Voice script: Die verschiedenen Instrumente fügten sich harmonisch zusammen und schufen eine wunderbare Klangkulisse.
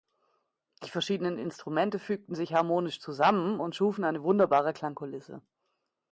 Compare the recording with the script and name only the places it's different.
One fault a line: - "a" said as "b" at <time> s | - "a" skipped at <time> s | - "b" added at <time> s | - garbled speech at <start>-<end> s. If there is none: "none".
none